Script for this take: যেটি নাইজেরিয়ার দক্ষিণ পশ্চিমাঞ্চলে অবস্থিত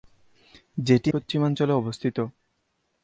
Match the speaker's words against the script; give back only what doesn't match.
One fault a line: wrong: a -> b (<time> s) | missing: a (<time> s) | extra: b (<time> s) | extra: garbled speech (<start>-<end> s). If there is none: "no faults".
missing: নাইজেরিয়ার দক্ষিণ (1.1 s)